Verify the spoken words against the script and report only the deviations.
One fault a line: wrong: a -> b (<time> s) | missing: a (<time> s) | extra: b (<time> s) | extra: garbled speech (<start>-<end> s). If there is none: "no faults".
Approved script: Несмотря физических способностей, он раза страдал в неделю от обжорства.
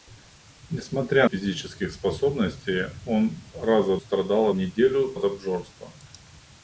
no faults